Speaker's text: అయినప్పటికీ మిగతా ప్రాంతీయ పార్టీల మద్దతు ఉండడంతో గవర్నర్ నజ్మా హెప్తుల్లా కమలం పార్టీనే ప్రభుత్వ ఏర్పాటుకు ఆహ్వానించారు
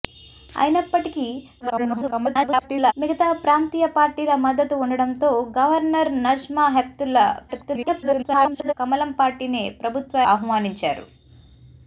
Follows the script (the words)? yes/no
no